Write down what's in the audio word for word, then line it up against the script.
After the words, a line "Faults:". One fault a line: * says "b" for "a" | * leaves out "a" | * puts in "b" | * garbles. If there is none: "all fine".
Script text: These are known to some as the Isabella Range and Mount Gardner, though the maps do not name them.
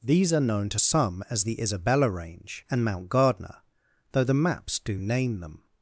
These are known to some as the Isabella Range and Mount Gardner, though the maps do name them.
Faults:
* leaves out "not"